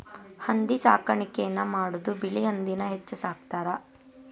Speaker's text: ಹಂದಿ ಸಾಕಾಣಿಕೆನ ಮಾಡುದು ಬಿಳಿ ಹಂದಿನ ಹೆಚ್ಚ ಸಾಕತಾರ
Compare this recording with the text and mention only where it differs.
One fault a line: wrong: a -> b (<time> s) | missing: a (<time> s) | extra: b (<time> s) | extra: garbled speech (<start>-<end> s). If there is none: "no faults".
no faults